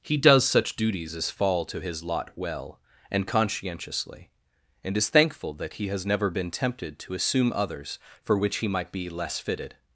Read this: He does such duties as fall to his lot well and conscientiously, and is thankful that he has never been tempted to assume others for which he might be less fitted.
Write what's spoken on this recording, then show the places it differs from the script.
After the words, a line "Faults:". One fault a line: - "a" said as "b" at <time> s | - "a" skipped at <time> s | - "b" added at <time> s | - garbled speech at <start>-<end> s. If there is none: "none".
He does such duties as fall to his lot well and conscientiously, and is thankful that he has never been tempted to assume others for which he might be less fitted.
Faults:
none